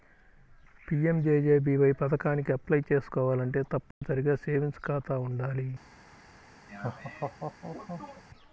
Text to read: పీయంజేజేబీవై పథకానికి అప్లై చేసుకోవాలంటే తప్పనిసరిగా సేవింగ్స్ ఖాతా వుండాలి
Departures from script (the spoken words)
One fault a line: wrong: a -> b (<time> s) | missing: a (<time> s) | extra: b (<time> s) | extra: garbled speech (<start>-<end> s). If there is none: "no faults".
no faults